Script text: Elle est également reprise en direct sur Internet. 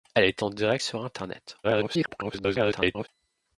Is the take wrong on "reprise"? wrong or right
wrong